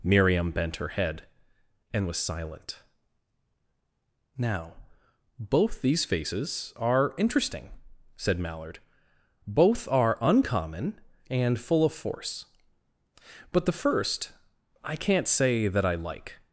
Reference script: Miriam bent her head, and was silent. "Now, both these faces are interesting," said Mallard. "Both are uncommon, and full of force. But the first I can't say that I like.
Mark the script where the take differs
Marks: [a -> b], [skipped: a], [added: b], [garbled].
Miriam bent her head, and was silent. "Now, both these faces are interesting," said Mallard. "Both are uncommon, and full of force. But the first I can't say that I like.